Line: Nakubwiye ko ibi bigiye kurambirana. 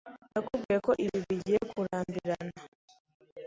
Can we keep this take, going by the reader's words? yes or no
yes